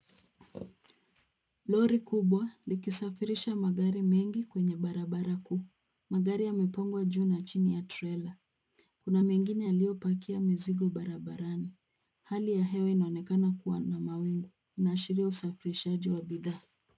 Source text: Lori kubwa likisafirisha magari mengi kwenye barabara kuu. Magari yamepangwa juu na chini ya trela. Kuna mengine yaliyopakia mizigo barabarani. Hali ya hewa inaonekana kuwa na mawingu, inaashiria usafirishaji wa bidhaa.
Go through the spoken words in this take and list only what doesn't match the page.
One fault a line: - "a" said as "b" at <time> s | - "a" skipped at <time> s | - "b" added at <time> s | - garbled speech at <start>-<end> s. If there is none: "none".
none